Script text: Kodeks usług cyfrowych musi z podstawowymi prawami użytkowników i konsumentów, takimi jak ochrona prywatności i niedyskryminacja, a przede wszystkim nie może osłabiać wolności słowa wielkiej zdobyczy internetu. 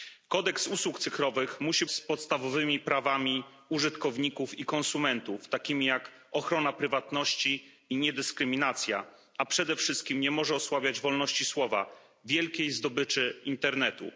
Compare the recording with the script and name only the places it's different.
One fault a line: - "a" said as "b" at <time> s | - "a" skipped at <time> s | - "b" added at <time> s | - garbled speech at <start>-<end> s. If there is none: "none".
none